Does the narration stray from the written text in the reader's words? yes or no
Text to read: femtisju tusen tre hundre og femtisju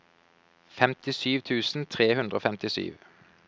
no